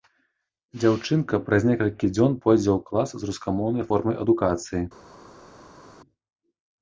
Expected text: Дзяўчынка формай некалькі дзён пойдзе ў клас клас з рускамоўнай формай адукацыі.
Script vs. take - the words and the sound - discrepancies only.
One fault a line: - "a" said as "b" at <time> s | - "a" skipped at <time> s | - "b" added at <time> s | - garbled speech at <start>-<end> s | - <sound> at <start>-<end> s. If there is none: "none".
- "формай" said as "праз" at 1.5 s
- "клас" skipped at 3.1 s